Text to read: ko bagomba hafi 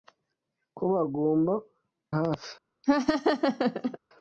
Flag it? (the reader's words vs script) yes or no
no